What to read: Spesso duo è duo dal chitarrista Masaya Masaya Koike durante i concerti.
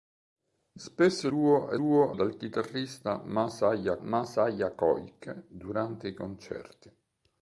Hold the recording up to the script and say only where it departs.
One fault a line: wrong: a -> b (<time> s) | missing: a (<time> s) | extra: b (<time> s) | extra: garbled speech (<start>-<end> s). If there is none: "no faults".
no faults